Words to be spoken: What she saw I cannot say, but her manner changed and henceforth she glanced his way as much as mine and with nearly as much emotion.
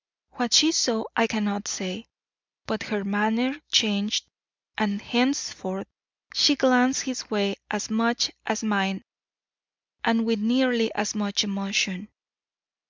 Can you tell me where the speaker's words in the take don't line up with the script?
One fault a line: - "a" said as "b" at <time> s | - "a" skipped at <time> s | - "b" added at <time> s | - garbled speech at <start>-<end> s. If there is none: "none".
none